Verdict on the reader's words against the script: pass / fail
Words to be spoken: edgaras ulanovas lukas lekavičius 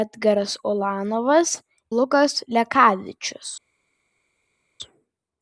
pass